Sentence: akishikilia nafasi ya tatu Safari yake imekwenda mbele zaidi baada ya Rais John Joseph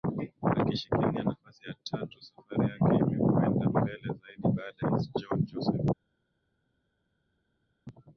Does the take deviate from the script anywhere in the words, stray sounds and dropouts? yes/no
yes